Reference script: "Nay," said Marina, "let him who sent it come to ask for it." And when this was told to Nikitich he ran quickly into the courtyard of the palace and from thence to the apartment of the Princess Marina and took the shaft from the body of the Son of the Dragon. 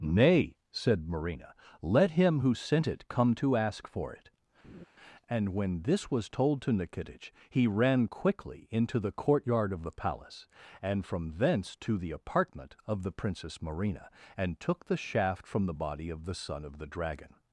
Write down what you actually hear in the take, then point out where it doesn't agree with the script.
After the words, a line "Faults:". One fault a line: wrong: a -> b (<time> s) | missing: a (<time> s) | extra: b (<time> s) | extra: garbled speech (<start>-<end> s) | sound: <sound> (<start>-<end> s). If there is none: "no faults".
"Nay," said Marina, "let him who sent it come to ask for it." And when this was told to Nikitich he ran quickly into the courtyard of the palace and from thence to the apartment of the Princess Marina and took the shaft from the body of the Son of the Dragon.
Faults:
sound: laugh (4.6-4.8 s)